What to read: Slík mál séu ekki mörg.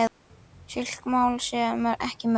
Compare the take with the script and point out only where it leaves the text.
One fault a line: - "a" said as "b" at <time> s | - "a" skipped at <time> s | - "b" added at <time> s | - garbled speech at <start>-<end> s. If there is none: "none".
none